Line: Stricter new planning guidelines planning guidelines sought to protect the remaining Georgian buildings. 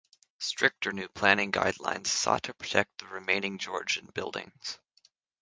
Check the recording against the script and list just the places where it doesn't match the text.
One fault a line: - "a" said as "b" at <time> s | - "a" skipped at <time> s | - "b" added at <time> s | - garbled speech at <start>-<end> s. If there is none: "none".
- "planning guidelines" skipped at 2.1 s